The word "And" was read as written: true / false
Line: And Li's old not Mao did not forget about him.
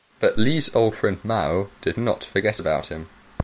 false